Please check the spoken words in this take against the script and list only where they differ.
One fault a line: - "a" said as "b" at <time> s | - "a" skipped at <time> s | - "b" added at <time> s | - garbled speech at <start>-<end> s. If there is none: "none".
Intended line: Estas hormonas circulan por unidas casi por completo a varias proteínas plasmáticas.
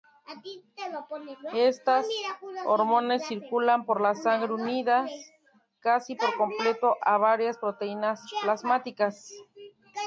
- "la sangre" added at 4.0 s